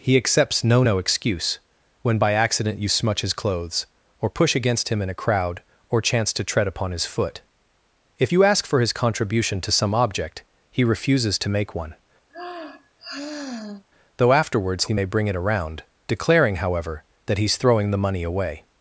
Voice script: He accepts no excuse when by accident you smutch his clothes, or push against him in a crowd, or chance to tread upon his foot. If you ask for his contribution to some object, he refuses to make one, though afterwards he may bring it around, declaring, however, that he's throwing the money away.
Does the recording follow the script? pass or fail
fail